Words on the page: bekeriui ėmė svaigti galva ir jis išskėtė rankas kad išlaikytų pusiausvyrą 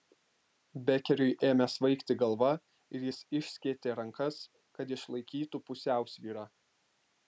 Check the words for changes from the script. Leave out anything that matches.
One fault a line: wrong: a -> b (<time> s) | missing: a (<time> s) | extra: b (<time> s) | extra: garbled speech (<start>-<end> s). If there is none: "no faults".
no faults